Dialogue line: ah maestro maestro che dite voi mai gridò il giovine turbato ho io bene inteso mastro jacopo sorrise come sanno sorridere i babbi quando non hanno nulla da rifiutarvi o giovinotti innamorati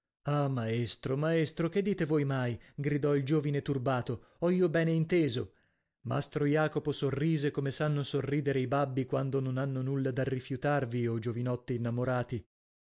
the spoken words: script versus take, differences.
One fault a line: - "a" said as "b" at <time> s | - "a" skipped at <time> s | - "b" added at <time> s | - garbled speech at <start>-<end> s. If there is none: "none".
none